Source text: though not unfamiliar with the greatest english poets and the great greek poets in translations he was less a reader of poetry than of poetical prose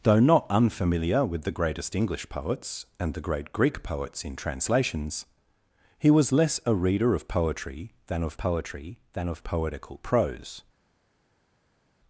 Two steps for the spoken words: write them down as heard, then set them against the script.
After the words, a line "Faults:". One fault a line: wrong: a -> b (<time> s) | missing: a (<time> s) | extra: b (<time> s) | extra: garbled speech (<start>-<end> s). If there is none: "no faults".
though not unfamiliar with the greatest english poets and the great greek poets in translations he was less a reader of poetry than of poetry than of poetical prose
Faults:
extra: poetry than of (8.4 s)